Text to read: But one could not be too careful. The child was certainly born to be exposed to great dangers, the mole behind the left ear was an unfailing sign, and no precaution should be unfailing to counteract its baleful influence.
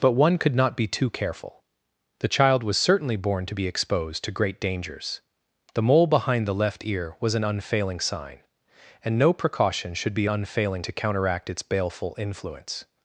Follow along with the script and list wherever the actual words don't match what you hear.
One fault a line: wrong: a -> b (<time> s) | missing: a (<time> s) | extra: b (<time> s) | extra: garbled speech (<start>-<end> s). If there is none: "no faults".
no faults